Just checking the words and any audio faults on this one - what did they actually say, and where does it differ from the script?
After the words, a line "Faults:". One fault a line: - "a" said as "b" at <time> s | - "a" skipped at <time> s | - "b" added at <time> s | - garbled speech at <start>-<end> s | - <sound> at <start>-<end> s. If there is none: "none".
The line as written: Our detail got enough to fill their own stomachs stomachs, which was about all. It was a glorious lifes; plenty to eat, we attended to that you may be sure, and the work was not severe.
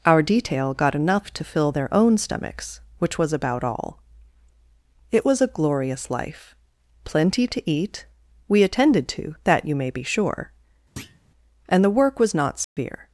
Our detail got enough to fill their own stomachs, which was about all. It was a glorious life; plenty to eat, we attended to that you may be sure, and the work was not severe.
Faults:
- "stomachs" skipped at 2.8 s
- "lifes" said as "life" at 6.1 s
- thud at 11.0-11.2 s
- dropout at 12.6-12.8 s